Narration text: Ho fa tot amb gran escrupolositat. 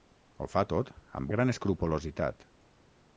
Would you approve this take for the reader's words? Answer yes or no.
yes